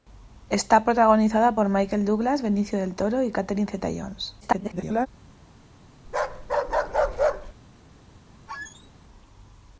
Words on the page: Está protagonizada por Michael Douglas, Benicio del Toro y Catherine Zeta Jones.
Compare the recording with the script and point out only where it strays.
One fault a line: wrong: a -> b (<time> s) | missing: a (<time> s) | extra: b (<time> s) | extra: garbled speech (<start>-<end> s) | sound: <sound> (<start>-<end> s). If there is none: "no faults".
extra: garbled speech (4.4-5.1 s)
sound: bark (6.1-7.5 s)
sound: squeak (8.5-8.9 s)